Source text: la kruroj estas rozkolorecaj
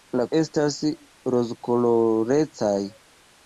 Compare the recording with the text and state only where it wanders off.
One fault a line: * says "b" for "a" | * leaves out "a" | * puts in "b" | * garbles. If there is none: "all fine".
* leaves out "kruroj"